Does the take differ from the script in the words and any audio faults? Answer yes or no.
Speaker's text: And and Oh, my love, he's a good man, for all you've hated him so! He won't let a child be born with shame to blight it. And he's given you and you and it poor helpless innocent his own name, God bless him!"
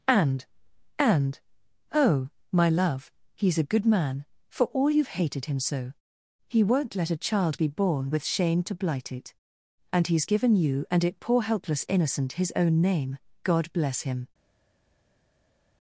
yes